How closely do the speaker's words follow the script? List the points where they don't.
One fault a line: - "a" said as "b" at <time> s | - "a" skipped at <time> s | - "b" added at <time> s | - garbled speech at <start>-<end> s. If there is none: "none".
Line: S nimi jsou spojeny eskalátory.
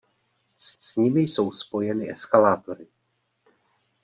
- "s" added at 0.8 s